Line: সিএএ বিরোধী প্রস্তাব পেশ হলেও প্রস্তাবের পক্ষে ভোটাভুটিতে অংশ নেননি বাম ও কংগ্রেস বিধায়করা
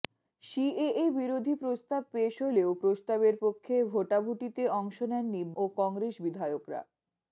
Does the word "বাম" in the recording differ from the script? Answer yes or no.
yes